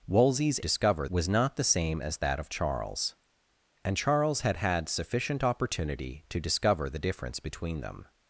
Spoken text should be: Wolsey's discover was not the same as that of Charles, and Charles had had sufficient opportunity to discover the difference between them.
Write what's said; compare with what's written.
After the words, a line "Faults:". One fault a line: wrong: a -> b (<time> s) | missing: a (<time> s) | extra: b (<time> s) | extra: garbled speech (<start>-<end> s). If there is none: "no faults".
Wolsey's discover was not the same as that of Charles, and Charles had had sufficient opportunity to discover the difference between them.
Faults:
no faults